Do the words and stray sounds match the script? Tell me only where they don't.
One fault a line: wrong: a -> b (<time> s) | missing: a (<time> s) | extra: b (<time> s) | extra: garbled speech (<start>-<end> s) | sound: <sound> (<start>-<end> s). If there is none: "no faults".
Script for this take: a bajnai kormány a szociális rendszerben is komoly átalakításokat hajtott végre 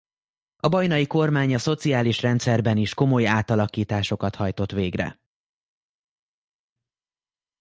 no faults